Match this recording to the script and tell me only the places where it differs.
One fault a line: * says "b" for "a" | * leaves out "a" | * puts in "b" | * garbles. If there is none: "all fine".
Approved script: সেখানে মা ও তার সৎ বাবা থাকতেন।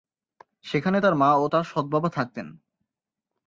* puts in "তার"